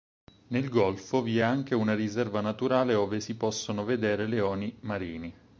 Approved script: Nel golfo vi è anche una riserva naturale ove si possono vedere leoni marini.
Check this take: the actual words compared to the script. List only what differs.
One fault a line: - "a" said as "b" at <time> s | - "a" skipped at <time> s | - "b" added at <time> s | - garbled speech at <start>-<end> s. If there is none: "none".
none